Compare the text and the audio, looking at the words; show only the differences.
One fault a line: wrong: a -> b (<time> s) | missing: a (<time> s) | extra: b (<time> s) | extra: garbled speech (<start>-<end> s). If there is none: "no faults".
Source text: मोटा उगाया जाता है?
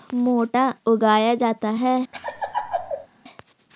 no faults